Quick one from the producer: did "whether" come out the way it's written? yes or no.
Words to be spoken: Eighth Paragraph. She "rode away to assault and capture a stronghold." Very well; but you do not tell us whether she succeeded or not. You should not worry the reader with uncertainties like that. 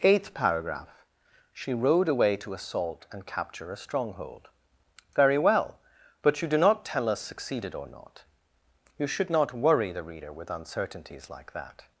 no